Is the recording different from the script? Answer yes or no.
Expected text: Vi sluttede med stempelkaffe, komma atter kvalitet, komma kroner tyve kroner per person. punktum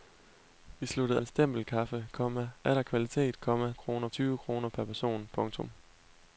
no